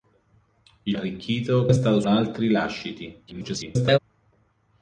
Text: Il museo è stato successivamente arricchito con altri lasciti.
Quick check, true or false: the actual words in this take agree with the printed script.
false